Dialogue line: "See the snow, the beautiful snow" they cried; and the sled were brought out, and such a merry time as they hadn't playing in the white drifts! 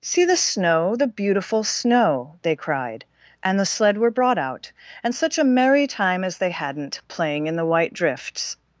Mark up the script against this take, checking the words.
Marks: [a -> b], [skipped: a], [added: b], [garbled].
"See the snow, the beautiful snow" they cried; and the sled were brought out, and such a merry time as they hadn't playing in the white drifts!